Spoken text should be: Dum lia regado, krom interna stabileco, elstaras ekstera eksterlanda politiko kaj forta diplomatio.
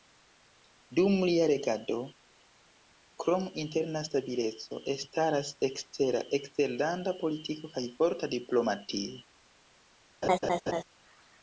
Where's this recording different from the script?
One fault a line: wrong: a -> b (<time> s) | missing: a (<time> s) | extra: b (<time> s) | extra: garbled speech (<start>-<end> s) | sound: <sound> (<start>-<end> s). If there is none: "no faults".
sound: dropout (4.7-4.7 s)
sound: laugh (10.2-10.8 s)